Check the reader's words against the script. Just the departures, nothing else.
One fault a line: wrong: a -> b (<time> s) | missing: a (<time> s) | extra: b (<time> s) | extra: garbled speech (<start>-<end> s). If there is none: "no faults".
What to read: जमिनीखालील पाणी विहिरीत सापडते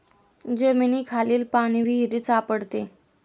no faults